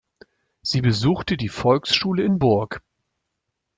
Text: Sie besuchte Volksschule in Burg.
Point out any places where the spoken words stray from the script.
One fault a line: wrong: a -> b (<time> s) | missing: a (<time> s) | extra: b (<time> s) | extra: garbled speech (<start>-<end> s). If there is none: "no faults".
extra: die (1.3 s)